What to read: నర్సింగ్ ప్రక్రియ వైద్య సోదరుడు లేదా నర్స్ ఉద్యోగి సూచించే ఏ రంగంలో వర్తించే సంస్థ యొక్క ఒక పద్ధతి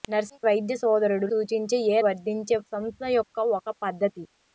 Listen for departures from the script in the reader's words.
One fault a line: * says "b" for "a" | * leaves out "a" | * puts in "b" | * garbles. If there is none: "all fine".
* leaves out "ప్రక్రియ"
* leaves out "లేదా నర్స్ ఉద్యోగి"
* leaves out "రంగంలో"